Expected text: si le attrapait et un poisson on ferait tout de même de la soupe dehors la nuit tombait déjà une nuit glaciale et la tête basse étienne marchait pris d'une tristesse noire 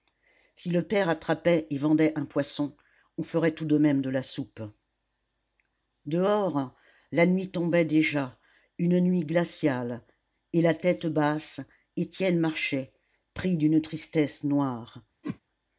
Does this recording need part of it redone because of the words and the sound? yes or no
yes